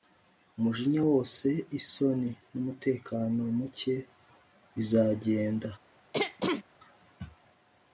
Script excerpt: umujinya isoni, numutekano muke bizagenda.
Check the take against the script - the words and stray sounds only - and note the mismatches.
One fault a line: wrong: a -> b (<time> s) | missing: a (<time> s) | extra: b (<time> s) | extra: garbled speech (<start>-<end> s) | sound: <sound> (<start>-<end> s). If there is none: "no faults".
extra: wose (1.1 s)
sound: throat clearing (6.1-6.6 s)